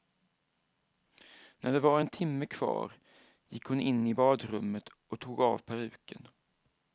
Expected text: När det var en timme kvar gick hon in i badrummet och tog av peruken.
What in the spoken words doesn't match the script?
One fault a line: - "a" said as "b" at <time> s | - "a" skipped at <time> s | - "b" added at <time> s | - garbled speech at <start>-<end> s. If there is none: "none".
none